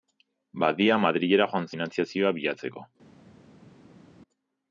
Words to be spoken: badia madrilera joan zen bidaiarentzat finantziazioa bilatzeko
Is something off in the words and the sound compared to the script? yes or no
yes